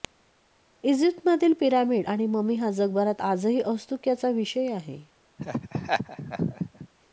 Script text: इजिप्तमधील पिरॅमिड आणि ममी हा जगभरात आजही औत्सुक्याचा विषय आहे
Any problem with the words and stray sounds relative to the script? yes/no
yes